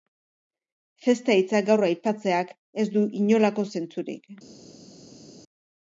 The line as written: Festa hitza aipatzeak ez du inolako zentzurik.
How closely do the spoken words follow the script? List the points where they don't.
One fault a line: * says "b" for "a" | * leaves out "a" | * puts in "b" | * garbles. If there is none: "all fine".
* puts in "gaur"